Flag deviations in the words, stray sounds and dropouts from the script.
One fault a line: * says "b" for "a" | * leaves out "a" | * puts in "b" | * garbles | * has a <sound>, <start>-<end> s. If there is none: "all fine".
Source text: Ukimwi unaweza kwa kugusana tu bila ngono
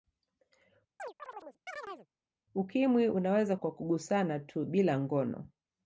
* has a chirp, 1.0-2.1 s